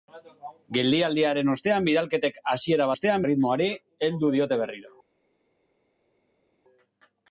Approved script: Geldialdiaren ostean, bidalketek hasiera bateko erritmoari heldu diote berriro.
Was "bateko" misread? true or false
true